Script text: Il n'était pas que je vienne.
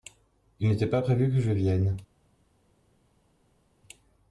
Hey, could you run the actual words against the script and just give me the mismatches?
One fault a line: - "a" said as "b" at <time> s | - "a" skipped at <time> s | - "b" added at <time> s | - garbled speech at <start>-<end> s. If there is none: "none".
- "prévu" added at 1.0 s